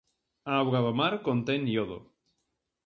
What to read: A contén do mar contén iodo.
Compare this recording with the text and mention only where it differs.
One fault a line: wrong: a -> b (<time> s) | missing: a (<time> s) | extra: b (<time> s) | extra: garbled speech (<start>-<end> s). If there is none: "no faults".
wrong: contén -> auga (0.6 s)